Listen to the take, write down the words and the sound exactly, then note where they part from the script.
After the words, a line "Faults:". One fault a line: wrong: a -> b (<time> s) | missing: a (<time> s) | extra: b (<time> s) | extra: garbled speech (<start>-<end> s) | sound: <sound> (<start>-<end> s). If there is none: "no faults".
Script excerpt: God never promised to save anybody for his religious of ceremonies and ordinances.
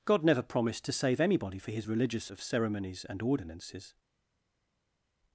God never promised to save anybody for his religious of ceremonies and ordinances.
Faults:
no faults